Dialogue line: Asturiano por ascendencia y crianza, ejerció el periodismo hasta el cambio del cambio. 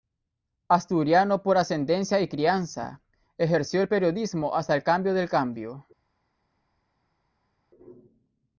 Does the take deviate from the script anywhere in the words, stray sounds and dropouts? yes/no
no